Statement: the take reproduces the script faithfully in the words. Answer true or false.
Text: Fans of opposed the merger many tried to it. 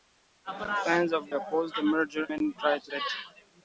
true